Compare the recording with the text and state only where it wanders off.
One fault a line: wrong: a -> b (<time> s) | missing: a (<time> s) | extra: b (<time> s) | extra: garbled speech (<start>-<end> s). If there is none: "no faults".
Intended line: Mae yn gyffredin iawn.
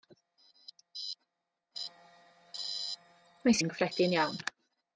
no faults